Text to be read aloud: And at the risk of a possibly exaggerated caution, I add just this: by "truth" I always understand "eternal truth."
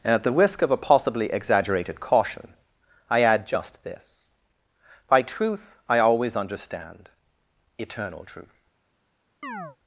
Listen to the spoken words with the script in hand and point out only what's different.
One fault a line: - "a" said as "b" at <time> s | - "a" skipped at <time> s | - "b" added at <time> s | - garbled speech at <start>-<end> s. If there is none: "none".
none